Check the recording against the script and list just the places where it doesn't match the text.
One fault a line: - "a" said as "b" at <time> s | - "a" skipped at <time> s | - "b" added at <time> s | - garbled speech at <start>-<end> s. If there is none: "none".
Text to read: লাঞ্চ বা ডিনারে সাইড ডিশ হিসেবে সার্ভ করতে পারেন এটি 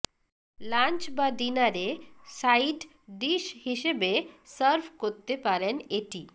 none